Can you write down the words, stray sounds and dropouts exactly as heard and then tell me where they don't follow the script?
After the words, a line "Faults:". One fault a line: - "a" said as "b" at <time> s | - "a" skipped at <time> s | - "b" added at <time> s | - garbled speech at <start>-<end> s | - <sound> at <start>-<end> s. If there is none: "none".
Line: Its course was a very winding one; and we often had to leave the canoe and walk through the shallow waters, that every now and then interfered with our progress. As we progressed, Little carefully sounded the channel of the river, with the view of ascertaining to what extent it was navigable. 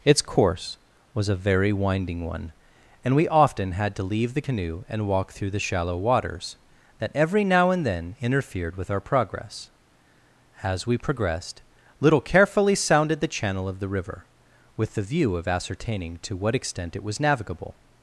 Its course was a very winding one; and we often had to leave the canoe and walk through the shallow waters, that every now and then interfered with our progress. As we progressed, Little carefully sounded the channel of the river, with the view of ascertaining to what extent it was navigable.
Faults:
none